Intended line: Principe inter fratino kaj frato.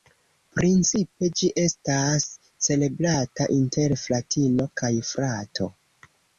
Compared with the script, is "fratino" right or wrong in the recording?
right